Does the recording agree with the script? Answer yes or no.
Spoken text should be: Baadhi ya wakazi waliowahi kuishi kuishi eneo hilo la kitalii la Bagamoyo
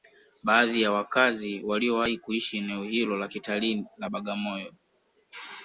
no